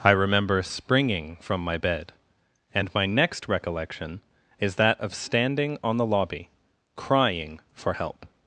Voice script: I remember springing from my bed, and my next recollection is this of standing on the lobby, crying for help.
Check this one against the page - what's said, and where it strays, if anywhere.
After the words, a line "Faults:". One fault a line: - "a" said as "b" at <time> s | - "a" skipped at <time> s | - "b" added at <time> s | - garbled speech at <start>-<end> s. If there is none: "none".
I remember springing from my bed, and my next recollection is that of standing on the lobby, crying for help.
Faults:
- "this" said as "that" at 4.8 s